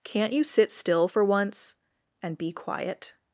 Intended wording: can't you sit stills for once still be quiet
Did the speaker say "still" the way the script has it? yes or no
no